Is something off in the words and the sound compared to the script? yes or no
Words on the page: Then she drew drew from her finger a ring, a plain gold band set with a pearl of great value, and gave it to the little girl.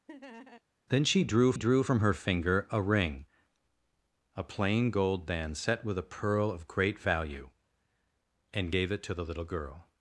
yes